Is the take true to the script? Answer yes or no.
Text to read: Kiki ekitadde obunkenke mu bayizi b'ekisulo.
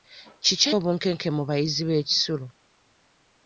no